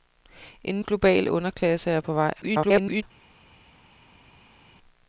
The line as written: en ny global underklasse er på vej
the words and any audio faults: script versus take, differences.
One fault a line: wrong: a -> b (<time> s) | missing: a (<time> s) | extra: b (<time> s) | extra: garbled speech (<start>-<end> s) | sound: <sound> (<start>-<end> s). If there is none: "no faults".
missing: ny (0.8 s)
extra: garbled speech (2.4-3.0 s)